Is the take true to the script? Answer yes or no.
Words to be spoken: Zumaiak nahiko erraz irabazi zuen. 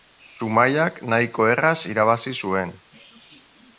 yes